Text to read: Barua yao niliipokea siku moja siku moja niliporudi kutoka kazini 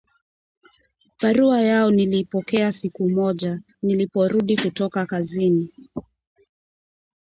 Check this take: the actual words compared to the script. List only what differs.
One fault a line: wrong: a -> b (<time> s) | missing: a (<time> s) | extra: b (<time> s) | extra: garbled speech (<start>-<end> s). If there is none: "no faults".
missing: siku moja (3.6 s)